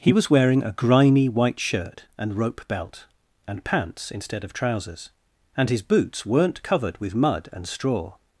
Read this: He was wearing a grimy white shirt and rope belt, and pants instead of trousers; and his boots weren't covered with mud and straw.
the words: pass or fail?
pass